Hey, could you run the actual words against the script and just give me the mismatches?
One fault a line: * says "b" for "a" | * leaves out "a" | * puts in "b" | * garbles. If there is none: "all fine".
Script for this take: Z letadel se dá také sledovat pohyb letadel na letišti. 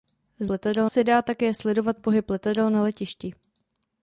all fine